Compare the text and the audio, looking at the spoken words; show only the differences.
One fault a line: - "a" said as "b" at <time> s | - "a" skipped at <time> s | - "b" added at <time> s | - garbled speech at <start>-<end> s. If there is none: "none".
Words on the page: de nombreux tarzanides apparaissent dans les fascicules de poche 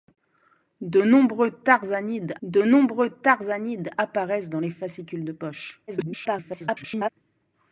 - "de nombreux tarzanides" added at 2.4 s
- garbled speech at 5.9-7.1 s